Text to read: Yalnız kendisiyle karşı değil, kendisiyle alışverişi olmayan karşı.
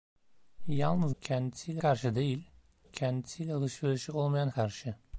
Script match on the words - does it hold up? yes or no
yes